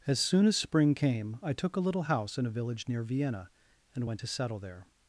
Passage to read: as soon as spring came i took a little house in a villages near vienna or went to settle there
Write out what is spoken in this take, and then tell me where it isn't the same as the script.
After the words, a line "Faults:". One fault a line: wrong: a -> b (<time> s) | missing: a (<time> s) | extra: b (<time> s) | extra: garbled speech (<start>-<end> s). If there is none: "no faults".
as soon as spring came i took a little house in a village near vienna and went to settle there
Faults:
wrong: villages -> village (2.6 s)
wrong: or -> and (3.9 s)